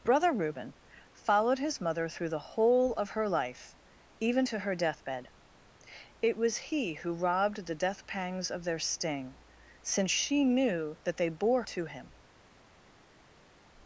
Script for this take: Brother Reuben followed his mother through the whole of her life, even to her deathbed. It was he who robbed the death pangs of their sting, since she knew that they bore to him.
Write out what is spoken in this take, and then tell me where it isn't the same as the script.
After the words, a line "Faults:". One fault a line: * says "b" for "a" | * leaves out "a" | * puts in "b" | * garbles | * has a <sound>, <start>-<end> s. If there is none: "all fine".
Brother Reuben followed his mother through the whole of her life, even to her deathbed. It was he who robbed the death pangs of their sting, since she knew that they bore to him.
Faults:
all fine